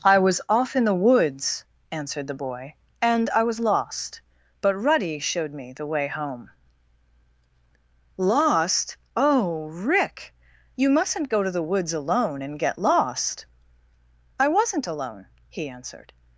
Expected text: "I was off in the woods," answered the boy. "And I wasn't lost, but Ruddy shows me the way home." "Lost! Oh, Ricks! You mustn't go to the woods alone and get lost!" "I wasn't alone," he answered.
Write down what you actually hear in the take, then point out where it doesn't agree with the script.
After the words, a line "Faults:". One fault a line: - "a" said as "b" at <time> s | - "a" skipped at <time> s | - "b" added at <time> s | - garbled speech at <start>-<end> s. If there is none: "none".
"I was off in the woods," answered the boy. "And I was lost, but Ruddy showed me the way home." "Lost! Oh, Rick! You mustn't go to the woods alone and get lost!" "I wasn't alone," he answered.
Faults:
- "wasn't" said as "was" at 3.4 s
- "shows" said as "showed" at 5.2 s
- "Ricks" said as "Rick" at 9.7 s